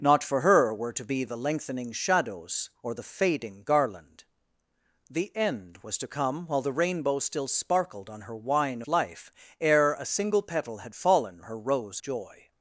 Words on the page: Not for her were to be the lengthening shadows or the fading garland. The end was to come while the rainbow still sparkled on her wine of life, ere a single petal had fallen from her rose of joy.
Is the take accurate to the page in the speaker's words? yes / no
no